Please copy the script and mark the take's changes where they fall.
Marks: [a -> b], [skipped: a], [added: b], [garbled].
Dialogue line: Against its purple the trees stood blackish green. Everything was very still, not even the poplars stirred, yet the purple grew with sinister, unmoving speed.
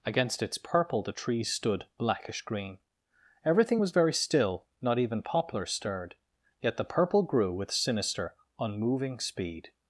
Against its purple the trees stood blackish green. Everything was very still, not even [skipped: the] poplars stirred, yet the purple grew with sinister, unmoving speed.